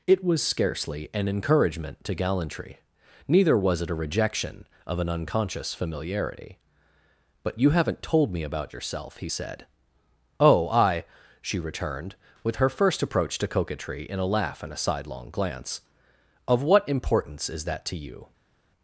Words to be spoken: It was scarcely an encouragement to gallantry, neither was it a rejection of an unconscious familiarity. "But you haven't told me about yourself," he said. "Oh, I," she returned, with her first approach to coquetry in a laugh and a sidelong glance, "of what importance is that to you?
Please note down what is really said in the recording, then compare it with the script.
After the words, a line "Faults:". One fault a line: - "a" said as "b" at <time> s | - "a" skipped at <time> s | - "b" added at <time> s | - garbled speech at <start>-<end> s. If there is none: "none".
It was scarcely an encouragement to gallantry, neither was it a rejection of an unconscious familiarity. "But you haven't told me about yourself," he said. "Oh, I," she returned, with her first approach to coquetry in a laugh and a sidelong glance, "of what importance is that to you?
Faults:
none